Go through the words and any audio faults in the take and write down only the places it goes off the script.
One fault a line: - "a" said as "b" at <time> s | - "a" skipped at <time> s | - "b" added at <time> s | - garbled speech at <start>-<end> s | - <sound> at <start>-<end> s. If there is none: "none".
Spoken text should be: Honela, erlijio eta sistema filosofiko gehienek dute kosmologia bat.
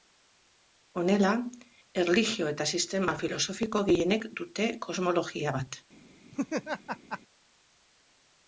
- laugh at 6.3-7.2 s